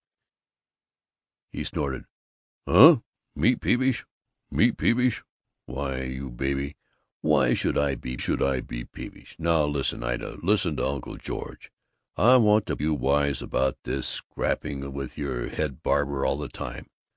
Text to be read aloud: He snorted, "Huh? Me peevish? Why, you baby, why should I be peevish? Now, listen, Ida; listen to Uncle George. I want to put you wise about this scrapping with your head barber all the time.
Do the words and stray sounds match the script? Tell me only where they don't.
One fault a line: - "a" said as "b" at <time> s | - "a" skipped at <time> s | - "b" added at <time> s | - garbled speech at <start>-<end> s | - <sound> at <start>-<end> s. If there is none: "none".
- "me peevish" added at 4.5 s
- "should I be" added at 8.1 s
- "put" skipped at 12.8 s